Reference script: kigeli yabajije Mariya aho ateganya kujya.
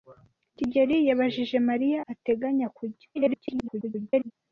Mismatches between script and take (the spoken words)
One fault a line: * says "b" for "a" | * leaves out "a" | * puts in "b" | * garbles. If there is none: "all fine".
* leaves out "aho"
* garbles